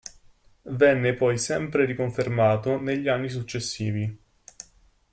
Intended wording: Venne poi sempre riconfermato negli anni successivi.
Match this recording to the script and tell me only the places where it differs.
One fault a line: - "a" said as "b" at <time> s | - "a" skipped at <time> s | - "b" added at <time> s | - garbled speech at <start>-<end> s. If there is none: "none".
none